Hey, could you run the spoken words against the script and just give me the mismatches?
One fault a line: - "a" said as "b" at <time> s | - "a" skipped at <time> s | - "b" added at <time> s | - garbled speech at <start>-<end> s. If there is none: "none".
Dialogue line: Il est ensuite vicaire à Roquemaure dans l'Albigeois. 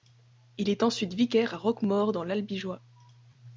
none